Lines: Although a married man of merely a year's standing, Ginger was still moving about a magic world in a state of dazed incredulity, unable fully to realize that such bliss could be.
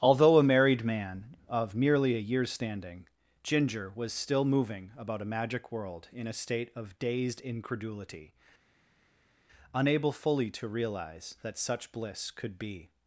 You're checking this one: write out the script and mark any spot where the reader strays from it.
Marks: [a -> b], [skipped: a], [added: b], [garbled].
Although a married man of merely a year's standing, Ginger was still moving about a magic world in a state of dazed incredulity, unable fully to realize that such bliss could be.